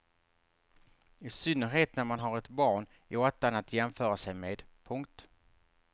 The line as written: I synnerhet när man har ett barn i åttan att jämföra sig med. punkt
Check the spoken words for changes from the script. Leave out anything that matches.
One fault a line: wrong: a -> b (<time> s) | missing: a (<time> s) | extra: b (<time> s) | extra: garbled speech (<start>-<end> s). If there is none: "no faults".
no faults